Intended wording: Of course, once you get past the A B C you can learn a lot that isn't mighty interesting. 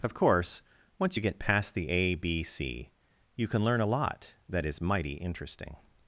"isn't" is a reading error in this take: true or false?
true